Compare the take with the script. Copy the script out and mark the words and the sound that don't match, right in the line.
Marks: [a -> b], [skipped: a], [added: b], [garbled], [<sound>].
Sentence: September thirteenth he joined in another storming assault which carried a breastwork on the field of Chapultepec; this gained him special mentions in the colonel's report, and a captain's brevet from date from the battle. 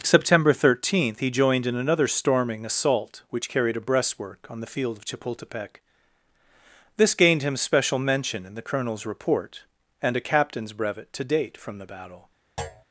September thirteenth he joined in another storming assault which carried a breastwork on the field of Chapultepec; this gained him special [mentions -> mention] in the colonel's report, and a captain's brevet [from -> to] date from the battle. [thud]